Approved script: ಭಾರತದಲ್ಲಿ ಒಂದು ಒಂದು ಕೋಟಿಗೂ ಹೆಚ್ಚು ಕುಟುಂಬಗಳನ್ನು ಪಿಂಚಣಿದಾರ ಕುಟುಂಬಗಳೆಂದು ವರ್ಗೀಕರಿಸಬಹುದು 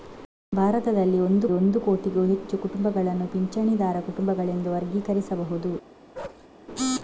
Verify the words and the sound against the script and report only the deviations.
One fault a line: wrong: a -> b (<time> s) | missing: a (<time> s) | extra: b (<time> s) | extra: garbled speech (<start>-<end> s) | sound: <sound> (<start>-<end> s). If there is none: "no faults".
sound: bark (6.1-6.5 s)